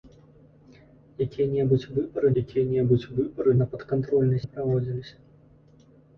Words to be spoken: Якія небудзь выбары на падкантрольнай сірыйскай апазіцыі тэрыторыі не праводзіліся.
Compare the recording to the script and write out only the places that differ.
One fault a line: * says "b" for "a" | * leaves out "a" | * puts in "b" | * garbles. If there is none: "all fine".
* says "якія небудзь выбары на падкантрольнай" for "на падкантрольнай сірыйскай апазіцыі тэрыторыі"